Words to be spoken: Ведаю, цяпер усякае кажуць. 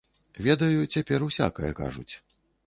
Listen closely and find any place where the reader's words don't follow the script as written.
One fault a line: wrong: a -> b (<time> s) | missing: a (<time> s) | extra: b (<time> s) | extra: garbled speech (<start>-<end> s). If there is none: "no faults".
no faults